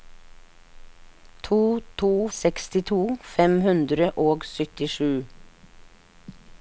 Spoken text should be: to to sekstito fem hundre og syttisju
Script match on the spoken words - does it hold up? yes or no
yes